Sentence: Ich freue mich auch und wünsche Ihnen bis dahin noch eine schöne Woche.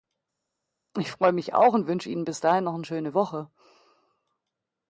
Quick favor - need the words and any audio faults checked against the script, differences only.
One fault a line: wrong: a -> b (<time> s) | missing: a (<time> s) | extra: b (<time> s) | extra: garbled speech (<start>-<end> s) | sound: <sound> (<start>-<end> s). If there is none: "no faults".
no faults